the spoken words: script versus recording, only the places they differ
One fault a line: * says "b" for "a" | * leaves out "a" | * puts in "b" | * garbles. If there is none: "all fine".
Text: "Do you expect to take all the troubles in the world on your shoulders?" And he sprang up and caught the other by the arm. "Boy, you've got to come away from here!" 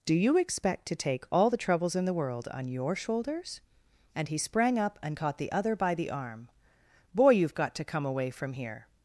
all fine